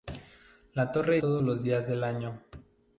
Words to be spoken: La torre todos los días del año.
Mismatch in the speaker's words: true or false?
false